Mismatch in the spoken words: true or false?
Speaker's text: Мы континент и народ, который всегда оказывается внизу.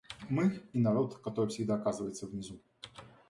true